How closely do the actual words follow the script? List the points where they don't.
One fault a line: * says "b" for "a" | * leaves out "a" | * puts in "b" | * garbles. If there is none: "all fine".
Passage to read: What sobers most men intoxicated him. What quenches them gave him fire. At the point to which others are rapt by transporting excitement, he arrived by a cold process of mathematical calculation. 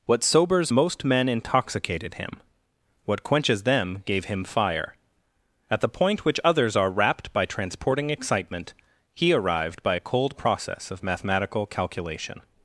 * leaves out "to"